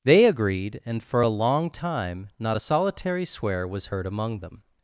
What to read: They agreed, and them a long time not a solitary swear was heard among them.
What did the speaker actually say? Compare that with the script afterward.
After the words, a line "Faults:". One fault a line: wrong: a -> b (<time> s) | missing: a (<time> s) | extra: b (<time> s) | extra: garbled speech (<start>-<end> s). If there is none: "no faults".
They agreed, and for a long time not a solitary swear was heard among them.
Faults:
wrong: them -> for (1.0 s)